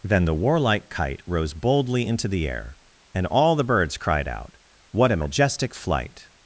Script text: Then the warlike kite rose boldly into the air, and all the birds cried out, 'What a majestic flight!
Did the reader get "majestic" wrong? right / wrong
right